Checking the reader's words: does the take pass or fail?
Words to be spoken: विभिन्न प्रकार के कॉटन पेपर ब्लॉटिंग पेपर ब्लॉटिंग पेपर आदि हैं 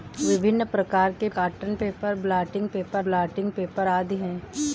pass